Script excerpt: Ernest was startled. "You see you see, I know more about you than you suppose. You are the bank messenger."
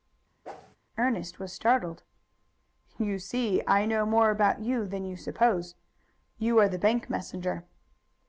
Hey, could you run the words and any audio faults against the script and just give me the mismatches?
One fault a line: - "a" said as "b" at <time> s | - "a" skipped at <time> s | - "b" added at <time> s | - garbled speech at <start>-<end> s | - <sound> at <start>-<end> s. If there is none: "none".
- whoosh at 0.4-0.8 s
- "you see" skipped at 3.6 s